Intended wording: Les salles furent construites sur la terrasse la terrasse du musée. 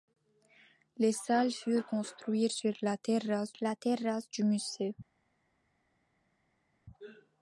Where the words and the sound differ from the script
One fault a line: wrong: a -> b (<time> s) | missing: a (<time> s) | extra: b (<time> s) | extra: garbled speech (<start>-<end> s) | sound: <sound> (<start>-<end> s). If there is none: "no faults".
no faults